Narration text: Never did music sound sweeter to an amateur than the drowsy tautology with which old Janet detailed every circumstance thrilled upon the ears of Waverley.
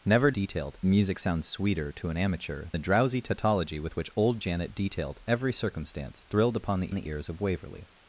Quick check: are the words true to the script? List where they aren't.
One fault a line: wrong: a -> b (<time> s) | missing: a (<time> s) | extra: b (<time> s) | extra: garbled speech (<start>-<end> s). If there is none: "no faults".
wrong: did -> detailed (0.3 s)
missing: than (2.7 s)
extra: the (6.9 s)